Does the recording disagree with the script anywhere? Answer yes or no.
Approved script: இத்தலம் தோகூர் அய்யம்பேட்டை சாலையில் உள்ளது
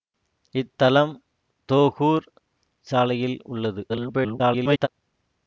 yes